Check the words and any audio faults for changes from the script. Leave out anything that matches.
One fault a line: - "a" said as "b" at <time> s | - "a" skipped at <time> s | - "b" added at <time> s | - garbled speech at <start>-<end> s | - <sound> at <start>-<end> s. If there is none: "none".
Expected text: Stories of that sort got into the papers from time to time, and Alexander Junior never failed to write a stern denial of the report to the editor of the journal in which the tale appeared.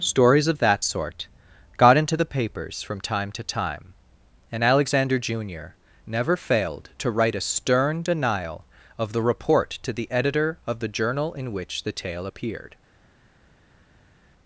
none